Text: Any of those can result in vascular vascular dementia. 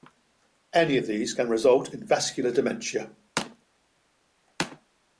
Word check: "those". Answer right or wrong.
wrong